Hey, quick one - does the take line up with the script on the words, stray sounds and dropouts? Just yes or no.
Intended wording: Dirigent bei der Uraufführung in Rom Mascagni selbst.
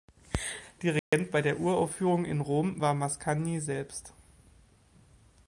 no